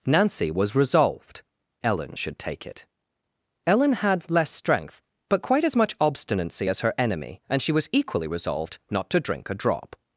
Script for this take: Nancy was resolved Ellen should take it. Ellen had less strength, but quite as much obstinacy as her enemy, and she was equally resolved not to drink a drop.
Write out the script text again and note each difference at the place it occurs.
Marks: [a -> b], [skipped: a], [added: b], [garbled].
Nancy was resolved Ellen should take it. Ellen had less strength, but quite as much obstinacy as her enemy, and she was equally resolved not to drink a drop.